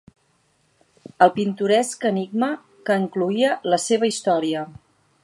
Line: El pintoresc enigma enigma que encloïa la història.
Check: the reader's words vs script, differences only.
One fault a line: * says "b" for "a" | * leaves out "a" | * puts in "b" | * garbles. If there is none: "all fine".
* leaves out "enigma"
* puts in "seva"